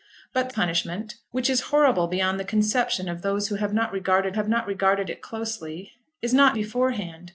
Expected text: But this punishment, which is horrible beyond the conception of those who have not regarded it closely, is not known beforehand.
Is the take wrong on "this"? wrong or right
wrong